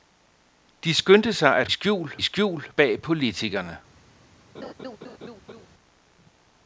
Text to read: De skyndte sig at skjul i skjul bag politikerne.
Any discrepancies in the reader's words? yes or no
no